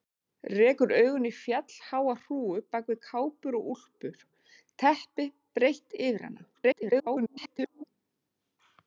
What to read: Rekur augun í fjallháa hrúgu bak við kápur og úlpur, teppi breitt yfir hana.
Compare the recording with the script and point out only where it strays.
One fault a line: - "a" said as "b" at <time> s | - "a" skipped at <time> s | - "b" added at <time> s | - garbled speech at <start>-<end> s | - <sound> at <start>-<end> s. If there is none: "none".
- garbled speech at 6.5-7.8 s